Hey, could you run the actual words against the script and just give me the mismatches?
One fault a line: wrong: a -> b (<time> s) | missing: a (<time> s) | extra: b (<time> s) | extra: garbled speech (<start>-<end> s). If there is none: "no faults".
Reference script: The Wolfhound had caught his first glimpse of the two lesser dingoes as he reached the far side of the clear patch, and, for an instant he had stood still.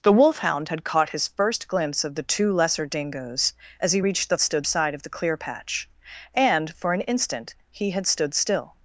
wrong: far -> stood (4.4 s)